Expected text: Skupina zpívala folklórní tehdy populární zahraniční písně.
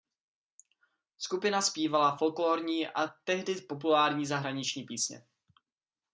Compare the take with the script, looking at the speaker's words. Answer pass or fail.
fail